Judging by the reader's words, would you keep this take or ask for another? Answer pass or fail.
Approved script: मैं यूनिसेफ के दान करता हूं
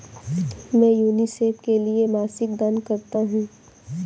fail